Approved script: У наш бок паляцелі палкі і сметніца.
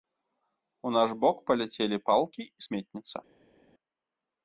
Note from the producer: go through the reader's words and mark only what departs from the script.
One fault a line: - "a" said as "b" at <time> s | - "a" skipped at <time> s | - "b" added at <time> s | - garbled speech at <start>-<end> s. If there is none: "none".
none